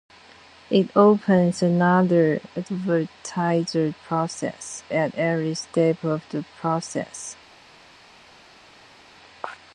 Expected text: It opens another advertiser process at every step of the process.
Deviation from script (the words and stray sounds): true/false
false